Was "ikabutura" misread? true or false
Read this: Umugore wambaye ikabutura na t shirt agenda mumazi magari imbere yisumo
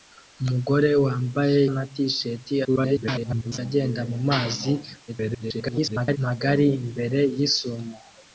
true